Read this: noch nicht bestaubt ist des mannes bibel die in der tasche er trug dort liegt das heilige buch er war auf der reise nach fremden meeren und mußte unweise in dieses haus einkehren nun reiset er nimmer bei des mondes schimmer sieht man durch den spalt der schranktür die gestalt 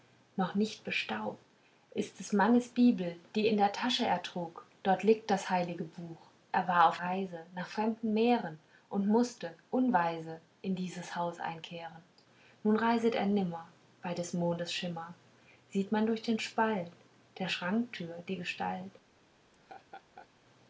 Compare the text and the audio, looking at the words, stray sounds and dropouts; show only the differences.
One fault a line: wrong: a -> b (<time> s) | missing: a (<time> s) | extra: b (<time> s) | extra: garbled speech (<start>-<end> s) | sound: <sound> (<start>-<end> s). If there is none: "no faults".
missing: der (7.0 s)
sound: laugh (19.5-20.3 s)